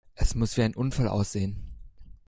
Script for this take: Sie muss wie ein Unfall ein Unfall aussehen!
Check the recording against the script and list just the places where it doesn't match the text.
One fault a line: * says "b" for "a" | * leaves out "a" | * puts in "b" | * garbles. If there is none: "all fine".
* says "Es" for "Sie"
* leaves out "ein Unfall"